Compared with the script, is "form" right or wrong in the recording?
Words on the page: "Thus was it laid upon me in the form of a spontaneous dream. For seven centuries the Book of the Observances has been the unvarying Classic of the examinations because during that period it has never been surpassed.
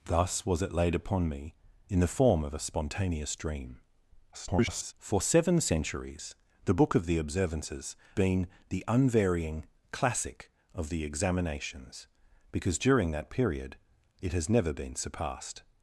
right